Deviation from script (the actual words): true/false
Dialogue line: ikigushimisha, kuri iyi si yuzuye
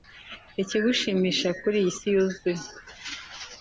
false